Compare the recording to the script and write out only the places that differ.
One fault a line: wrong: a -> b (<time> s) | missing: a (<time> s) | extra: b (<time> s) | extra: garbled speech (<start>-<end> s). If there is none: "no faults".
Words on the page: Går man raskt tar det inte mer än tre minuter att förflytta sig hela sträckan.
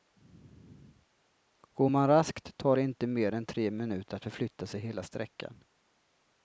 no faults